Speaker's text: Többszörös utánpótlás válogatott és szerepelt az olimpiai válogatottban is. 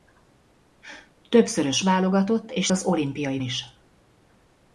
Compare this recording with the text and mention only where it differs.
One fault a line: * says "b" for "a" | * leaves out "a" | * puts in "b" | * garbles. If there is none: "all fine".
* leaves out "utánpótlás"
* leaves out "szerepelt"
* leaves out "válogatottban"